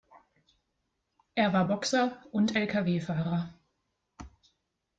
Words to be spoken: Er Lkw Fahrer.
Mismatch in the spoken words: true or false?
true